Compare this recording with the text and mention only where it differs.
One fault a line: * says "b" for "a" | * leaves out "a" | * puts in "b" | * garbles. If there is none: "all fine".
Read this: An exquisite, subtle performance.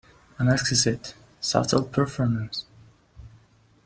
all fine